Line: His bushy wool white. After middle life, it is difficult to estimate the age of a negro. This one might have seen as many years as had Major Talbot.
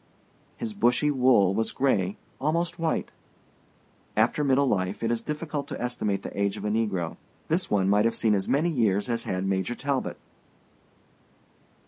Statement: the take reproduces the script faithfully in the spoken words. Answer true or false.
false